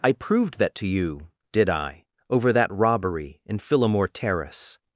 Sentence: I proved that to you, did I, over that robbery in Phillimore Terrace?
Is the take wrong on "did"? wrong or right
right